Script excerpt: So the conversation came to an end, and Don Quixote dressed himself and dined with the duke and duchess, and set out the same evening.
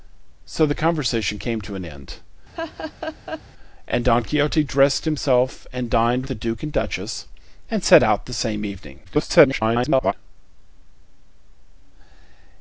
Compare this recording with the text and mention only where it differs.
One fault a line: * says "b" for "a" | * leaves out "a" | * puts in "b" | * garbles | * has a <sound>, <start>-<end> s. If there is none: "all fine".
* has a laugh, 2.5-3.4 s
* leaves out "with"
* garbles